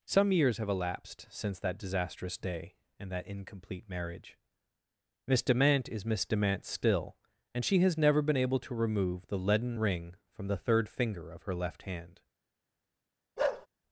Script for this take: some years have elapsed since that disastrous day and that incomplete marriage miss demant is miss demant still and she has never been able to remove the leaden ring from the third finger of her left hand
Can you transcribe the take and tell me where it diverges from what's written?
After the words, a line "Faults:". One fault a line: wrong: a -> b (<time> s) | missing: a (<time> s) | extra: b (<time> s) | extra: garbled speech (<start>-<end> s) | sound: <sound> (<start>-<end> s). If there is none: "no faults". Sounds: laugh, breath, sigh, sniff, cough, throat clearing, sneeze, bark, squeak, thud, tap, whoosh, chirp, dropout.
some years have elapsed since that disastrous day and that incomplete marriage miss demant is miss demant still and she has never been able to remove the leaden ring from the third finger of her left hand
Faults:
sound: bark (13.4-13.7 s)